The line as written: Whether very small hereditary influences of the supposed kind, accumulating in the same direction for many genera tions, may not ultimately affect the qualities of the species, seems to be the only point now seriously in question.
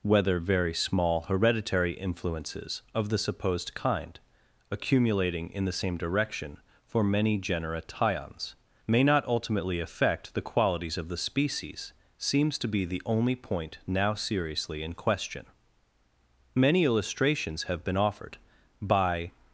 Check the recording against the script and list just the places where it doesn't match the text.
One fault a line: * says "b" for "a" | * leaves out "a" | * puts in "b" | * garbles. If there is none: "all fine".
* puts in "Many illustrations have been offered by"